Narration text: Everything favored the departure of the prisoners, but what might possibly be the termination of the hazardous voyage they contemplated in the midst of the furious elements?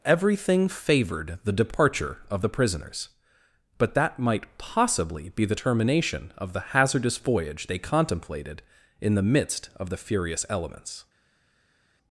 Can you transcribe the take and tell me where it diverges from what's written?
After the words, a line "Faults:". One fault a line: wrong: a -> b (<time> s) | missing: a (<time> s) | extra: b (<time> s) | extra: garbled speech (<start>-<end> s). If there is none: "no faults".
Everything favored the departure of the prisoners, but that might possibly be the termination of the hazardous voyage they contemplated in the midst of the furious elements?
Faults:
wrong: what -> that (3.9 s)